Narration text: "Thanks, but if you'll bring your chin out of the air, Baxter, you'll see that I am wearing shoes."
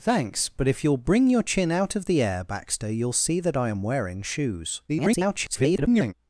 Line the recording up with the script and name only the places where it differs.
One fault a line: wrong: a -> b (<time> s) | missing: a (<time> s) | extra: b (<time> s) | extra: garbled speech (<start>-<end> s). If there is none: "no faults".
extra: garbled speech (4.9-6.1 s)